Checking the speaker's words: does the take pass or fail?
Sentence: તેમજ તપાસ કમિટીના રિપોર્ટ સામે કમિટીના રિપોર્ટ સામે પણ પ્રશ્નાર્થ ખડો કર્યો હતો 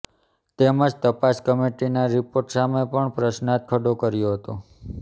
fail